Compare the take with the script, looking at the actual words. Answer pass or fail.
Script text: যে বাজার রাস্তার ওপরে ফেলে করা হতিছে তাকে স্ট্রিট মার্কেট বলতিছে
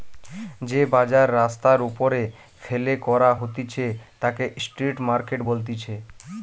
pass